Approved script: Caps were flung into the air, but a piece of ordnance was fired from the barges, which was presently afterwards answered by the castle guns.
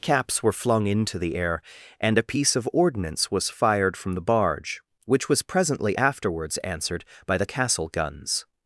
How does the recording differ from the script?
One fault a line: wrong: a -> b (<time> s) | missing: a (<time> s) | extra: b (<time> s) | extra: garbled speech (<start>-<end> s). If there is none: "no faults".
wrong: but -> and (2.0 s)
wrong: barges -> barge (4.2 s)